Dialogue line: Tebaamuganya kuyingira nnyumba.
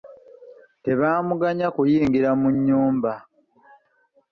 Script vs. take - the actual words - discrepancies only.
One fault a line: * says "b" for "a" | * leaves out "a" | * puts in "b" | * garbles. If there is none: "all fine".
* puts in "mu"